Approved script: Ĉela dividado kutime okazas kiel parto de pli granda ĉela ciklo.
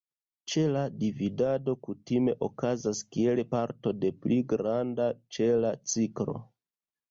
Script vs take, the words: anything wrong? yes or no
no